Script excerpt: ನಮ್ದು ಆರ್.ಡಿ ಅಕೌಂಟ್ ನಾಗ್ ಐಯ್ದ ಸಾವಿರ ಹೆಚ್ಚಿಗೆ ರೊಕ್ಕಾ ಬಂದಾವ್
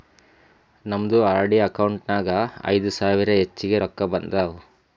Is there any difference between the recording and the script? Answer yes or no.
no